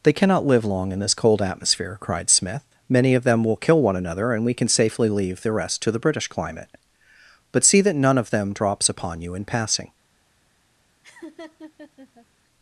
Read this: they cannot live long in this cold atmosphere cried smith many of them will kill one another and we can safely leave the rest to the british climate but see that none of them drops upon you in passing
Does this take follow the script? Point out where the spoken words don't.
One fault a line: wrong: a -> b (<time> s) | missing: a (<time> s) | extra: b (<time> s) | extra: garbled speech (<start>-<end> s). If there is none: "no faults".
no faults